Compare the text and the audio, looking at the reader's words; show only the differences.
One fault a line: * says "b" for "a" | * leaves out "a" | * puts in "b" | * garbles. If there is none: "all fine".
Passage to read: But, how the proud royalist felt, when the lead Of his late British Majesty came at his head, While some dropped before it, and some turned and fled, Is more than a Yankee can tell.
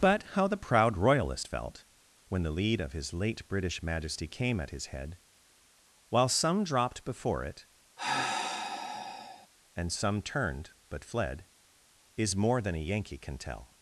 * says "but" for "and"